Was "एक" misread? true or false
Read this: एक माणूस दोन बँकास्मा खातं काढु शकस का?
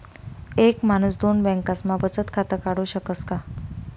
false